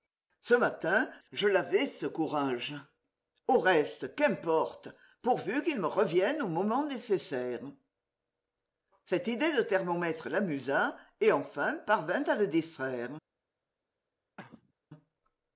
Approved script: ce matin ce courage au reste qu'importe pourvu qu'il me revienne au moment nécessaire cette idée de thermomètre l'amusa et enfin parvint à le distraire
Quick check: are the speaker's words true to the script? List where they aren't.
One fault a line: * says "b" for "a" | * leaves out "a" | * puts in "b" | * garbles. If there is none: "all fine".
* puts in "je l'avais"